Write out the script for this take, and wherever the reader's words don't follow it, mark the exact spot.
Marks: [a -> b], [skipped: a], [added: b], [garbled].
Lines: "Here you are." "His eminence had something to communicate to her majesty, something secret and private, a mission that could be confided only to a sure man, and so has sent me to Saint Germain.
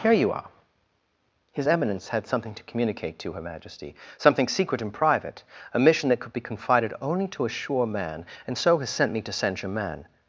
"Here you are." "His eminence had something to communicate to her majesty, something secret and private, a mission that could be confided only to a sure man, and so has sent me to Saint Germain.